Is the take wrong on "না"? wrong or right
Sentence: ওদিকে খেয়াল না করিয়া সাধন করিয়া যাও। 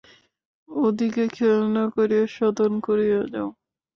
right